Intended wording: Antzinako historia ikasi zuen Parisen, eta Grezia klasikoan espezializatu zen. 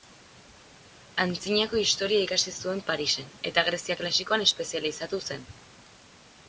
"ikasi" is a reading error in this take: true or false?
false